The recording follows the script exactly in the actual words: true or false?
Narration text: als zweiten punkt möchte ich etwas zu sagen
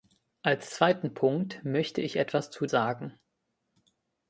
true